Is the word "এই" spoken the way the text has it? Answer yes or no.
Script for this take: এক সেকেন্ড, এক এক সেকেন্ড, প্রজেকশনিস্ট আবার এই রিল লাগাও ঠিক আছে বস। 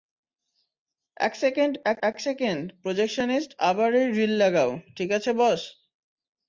yes